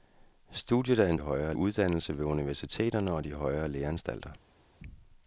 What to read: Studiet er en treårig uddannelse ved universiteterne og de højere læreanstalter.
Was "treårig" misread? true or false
true